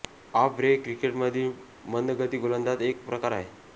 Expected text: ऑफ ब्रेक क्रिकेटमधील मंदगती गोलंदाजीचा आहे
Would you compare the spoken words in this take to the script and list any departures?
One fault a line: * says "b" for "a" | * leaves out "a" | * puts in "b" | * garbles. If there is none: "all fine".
* puts in "एक प्रकार"